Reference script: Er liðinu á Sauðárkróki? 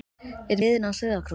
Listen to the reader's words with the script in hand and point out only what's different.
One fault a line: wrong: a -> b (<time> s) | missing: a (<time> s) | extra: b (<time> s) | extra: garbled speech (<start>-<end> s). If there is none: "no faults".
no faults